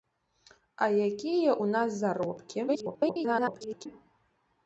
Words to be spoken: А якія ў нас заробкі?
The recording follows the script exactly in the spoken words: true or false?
false